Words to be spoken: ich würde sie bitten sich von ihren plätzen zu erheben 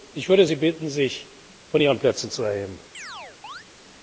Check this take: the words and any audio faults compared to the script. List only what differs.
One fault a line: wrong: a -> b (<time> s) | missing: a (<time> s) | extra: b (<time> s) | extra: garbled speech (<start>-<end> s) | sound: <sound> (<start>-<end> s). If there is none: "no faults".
sound: chirp (2.9-3.7 s)